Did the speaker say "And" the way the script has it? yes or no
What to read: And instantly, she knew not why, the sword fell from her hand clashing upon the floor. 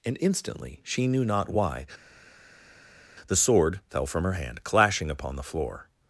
yes